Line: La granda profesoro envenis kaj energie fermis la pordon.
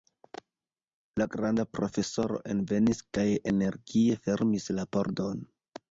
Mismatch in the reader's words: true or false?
false